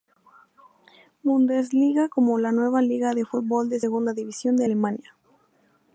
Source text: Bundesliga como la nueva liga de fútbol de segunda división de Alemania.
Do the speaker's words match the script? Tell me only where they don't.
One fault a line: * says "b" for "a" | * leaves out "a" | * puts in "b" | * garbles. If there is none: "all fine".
all fine